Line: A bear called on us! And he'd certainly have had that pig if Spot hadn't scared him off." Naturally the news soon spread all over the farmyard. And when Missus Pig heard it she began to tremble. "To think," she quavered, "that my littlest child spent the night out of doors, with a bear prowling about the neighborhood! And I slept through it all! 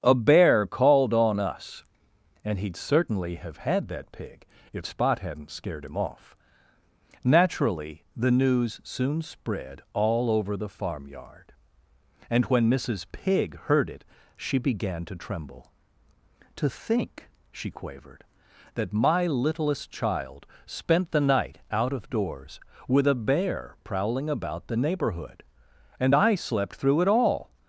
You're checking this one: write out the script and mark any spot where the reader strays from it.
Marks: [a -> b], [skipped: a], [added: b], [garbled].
A bear called on us! And he'd certainly have had that pig if Spot hadn't scared him off." Naturally the news soon spread all over the farmyard. And when Missus Pig heard it she began to tremble. "To think," she quavered, "that my littlest child spent the night out of doors, with a bear prowling about the neighborhood! And I slept through it all!